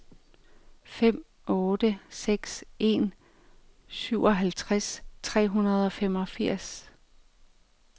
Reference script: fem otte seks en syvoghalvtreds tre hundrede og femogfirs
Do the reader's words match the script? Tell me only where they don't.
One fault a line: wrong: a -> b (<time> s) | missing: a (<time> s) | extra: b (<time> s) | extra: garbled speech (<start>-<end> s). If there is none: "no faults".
no faults